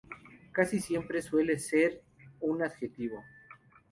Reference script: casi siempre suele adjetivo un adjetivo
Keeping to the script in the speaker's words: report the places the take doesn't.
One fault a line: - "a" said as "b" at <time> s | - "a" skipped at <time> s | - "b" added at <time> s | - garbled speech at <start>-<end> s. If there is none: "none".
- "adjetivo" said as "ser" at 1.6 s